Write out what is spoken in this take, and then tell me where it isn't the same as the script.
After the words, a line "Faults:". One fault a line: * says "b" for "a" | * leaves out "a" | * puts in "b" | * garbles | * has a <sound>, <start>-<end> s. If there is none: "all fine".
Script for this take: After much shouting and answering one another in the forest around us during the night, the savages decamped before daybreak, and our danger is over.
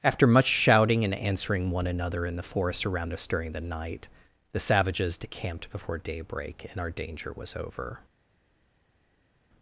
After much shouting and answering one another in the forest around us during the night, the savages decamped before daybreak, and our danger was over.
Faults:
* says "was" for "is"